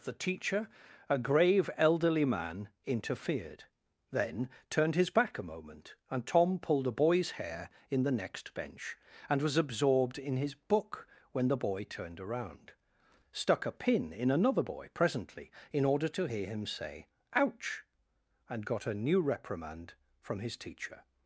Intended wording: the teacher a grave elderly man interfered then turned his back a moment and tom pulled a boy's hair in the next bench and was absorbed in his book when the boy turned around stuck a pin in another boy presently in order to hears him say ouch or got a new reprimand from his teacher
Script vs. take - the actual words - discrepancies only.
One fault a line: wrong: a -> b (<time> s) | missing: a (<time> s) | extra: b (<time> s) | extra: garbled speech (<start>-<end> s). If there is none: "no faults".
wrong: hears -> hear (16.2 s)
wrong: or -> and (18.5 s)